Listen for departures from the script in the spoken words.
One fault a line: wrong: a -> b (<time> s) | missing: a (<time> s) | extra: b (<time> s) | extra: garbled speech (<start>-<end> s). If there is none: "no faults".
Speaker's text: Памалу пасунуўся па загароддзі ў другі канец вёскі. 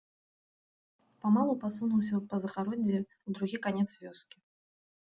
no faults